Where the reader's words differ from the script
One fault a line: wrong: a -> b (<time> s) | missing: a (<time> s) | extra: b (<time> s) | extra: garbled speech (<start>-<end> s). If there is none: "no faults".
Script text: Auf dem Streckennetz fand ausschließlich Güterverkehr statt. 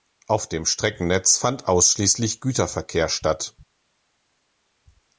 no faults